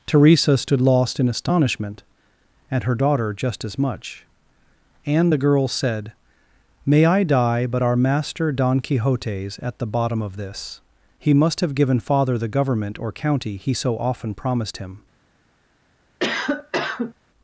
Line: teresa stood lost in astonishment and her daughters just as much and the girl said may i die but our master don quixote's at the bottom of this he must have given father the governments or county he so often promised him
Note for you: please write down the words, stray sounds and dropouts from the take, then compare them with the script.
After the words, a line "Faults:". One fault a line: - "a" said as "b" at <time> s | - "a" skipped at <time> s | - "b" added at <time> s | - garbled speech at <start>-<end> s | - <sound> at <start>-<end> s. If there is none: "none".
teresa stood lost in astonishment and her daughter just as much and the girl said may i die but our master don quixote's at the bottom of this he must have given father the government or county he so often promised him
Faults:
- "daughters" said as "daughter" at 3.0 s
- "governments" said as "government" at 12.5 s
- cough at 16.2-17.1 s